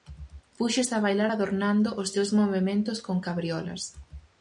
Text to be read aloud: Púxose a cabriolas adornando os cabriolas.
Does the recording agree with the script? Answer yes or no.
no